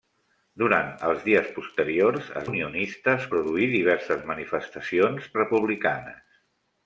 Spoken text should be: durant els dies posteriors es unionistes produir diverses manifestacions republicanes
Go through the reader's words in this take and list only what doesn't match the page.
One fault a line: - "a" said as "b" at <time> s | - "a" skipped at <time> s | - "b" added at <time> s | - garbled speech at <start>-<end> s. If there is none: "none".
none